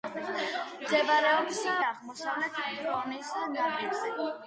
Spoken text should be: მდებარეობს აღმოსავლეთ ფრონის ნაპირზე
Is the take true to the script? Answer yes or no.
yes